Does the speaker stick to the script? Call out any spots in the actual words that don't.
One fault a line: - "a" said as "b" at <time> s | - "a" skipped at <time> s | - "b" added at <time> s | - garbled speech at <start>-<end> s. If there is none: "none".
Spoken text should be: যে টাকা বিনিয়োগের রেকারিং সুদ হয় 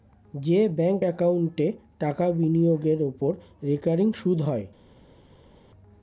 - "ব্যাঙ্ক একাউন্টে" added at 0.8 s
- "ওপর" added at 3.1 s